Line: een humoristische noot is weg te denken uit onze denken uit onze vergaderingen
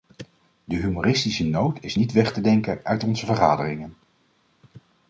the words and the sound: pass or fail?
fail